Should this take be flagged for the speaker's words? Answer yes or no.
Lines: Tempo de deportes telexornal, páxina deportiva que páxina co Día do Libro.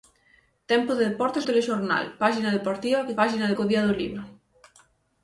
no